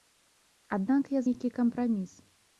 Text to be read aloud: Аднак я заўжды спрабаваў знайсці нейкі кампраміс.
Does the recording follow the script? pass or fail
fail